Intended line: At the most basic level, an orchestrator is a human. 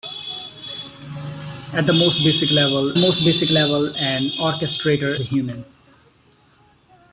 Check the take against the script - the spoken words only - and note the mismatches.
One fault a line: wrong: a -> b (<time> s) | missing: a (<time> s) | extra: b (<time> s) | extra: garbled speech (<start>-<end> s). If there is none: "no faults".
extra: most basic level (3.0 s)
missing: is (5.1 s)